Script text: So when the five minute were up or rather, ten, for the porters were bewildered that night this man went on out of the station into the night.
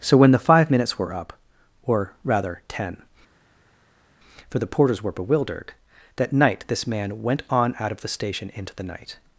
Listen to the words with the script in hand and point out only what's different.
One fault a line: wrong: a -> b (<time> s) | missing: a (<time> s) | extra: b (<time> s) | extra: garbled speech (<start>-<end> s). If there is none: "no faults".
wrong: minute -> minutes (0.7 s)